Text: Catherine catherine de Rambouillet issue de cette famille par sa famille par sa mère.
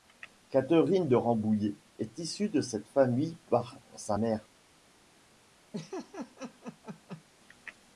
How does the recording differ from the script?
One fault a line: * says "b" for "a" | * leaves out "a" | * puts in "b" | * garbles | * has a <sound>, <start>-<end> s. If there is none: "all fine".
* leaves out "catherine"
* puts in "est"
* leaves out "famille par sa"
* has a laugh, 5.7-7.2 s